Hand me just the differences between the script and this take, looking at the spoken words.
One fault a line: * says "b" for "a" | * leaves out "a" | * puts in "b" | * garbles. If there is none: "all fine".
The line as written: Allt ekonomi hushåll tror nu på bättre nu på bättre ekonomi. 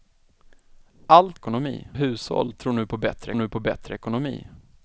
all fine